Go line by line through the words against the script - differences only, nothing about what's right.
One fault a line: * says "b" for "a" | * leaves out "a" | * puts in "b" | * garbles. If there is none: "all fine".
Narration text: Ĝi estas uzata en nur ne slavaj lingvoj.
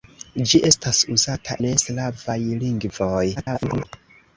* leaves out "en nur"
* garbles